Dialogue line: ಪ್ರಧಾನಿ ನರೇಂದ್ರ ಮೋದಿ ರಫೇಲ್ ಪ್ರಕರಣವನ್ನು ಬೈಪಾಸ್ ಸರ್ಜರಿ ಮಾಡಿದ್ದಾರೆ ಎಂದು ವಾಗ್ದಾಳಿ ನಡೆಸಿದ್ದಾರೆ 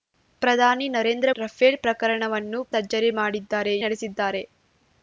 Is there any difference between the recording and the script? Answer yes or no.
yes